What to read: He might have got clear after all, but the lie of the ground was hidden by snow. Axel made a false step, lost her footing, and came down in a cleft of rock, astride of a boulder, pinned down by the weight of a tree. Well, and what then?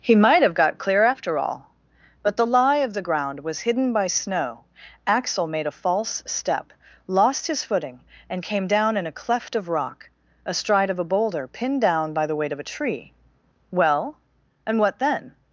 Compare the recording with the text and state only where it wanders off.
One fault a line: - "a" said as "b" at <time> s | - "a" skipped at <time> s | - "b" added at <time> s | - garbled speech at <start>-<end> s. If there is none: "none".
- "her" said as "his" at 7.5 s